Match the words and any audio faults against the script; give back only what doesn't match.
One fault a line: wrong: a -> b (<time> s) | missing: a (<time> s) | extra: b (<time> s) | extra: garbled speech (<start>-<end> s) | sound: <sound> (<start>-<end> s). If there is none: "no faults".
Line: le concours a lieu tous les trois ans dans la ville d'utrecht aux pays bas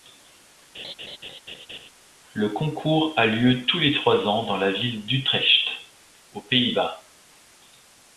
sound: laugh (0.7-1.9 s)